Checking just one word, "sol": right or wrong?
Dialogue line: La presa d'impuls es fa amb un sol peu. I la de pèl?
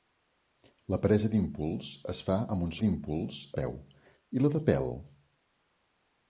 wrong